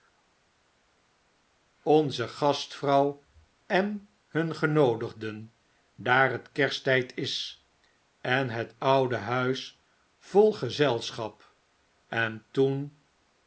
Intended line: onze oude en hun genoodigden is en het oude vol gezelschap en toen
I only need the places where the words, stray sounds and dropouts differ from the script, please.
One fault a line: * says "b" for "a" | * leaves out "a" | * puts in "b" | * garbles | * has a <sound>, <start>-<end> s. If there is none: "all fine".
* says "gastvrouw" for "oude"
* puts in "daar het kersttyd"
* puts in "huis"